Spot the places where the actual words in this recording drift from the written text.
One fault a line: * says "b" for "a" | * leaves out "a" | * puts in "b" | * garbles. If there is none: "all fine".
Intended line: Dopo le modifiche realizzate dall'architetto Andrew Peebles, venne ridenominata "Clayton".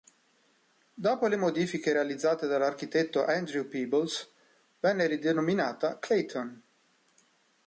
all fine